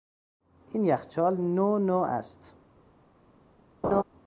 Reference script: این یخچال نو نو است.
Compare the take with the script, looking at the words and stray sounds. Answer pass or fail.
fail